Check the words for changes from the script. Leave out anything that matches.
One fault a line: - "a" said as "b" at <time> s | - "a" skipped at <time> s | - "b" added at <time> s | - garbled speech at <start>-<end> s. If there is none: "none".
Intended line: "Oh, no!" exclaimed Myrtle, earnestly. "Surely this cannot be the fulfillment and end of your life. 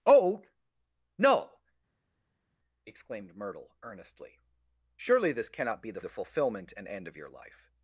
- "the" added at 6.0 s